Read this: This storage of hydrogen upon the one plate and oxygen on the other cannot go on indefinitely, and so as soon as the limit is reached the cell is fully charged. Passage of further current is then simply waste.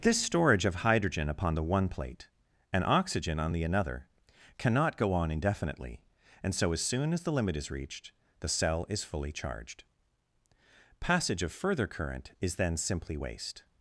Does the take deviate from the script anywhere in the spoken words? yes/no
yes